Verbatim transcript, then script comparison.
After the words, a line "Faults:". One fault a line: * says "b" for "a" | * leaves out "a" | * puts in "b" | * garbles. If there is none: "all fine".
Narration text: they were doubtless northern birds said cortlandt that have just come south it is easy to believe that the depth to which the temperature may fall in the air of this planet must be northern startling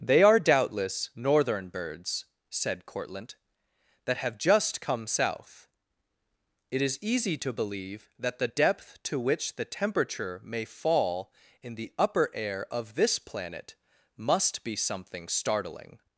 they are doubtless northern birds said cortlandt that have just come south it is easy to believe that the depth to which the temperature may fall in the upper air of this planet must be something startling
Faults:
* says "are" for "were"
* puts in "upper"
* says "something" for "northern"